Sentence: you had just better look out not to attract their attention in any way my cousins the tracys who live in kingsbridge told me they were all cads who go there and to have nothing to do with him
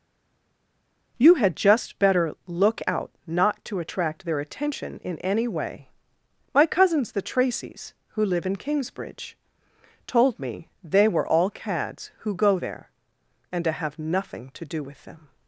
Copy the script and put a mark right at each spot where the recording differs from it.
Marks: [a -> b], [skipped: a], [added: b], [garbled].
you had just better look out not to attract their attention in any way my cousins the tracys who live in kingsbridge told me they were all cads who go there and to have nothing to do with [him -> them]